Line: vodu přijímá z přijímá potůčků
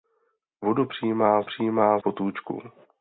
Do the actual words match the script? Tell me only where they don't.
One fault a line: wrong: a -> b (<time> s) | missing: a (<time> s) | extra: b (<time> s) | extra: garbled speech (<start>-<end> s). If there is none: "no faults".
no faults